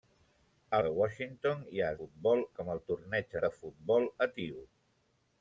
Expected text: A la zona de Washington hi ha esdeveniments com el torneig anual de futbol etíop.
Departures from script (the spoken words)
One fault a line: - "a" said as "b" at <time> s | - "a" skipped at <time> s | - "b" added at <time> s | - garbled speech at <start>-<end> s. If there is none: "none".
- "la zona" skipped at 0.8 s
- "esdeveniments" said as "futbol" at 2.0 s
- "anual" skipped at 3.4 s